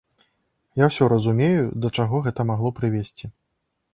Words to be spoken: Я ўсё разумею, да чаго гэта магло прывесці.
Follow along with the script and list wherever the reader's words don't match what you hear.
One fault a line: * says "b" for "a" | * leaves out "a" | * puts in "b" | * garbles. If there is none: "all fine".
all fine